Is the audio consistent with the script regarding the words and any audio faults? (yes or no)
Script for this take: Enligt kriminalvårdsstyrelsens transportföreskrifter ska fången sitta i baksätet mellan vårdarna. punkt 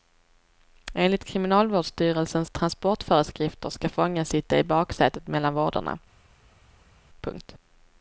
yes